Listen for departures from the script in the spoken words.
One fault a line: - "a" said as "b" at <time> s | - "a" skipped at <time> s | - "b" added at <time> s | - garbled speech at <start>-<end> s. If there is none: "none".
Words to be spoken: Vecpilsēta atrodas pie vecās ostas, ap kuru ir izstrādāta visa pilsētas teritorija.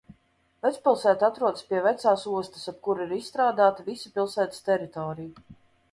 none